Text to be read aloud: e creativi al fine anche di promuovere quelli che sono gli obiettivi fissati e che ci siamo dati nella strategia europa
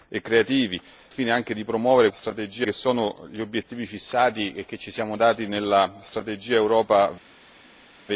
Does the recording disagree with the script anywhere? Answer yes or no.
yes